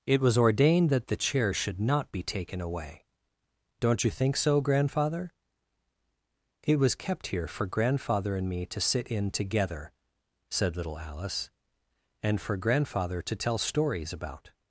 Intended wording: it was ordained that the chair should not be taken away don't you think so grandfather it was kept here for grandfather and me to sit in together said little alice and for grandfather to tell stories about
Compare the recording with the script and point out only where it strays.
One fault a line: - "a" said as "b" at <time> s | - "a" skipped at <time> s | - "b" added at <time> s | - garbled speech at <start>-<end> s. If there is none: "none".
none